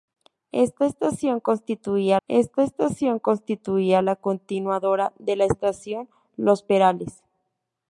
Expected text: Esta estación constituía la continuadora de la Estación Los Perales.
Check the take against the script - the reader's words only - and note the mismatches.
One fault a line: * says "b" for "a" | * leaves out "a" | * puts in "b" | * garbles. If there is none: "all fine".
* puts in "esta estación constituía"